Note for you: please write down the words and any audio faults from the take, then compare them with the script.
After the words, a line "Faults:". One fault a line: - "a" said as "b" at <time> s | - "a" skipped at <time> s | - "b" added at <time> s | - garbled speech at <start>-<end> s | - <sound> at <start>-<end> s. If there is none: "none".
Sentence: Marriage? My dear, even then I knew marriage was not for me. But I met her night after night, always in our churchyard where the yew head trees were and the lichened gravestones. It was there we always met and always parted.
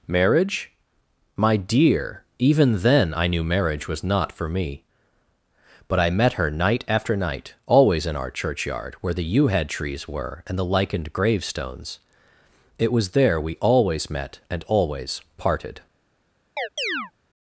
Marriage? My dear, even then I knew marriage was not for me. But I met her night after night, always in our churchyard where the yew head trees were and the lichened gravestones. It was there we always met and always parted.
Faults:
- chirp at 16.6-17.1 s